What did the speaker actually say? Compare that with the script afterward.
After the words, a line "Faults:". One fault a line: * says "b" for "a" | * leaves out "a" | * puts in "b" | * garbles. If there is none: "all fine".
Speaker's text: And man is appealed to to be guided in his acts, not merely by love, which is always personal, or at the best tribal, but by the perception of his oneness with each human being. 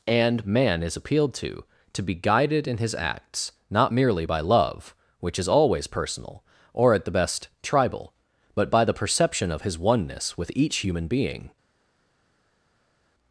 And man is appealed to to be guided in his acts, not merely by love, which is always personal, or at the best tribal, but by the perception of his oneness with each human being.
Faults:
all fine